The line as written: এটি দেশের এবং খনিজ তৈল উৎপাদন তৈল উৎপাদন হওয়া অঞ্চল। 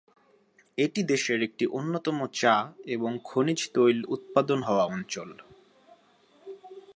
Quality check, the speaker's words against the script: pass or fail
fail